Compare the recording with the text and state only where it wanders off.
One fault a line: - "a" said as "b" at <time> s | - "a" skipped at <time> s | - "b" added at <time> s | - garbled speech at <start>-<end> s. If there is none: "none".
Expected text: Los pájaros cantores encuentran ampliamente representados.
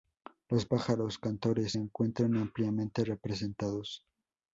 none